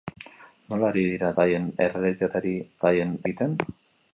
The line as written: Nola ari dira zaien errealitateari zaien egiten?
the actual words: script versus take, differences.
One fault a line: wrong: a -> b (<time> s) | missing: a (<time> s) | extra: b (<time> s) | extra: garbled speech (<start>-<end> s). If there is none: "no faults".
no faults